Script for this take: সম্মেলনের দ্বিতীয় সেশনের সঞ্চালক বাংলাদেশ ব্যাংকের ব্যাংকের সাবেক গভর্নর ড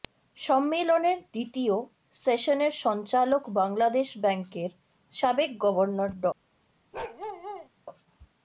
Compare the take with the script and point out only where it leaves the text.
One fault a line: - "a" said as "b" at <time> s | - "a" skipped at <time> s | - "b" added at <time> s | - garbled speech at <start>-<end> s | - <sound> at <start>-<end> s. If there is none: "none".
- "ব্যাংকের" skipped at 4.7 s
- bark at 6.9-7.7 s